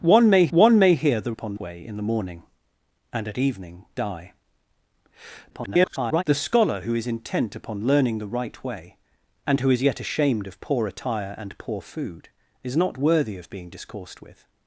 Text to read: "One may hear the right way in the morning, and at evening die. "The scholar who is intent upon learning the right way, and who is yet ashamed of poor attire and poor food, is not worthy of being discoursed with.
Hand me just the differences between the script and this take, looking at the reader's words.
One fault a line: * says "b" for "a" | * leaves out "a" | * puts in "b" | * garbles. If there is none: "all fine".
* puts in "one may"
* says "upon" for "right"
* garbles